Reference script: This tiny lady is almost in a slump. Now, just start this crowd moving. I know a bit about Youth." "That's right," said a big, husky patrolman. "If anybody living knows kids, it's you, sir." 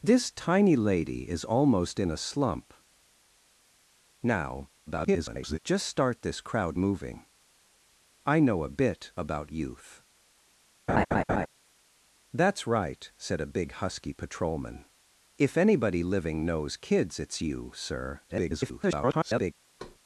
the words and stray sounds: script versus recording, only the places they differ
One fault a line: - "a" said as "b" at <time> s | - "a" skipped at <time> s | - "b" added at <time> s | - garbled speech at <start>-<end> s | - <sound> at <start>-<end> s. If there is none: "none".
- garbled speech at 4.9-5.6 s
- laugh at 10.9-11.5 s
- garbled speech at 18.3-19.5 s
- thud at 19.8-20.0 s